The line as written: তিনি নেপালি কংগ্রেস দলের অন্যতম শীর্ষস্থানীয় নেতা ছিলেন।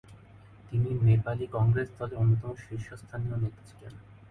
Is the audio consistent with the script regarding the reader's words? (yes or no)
yes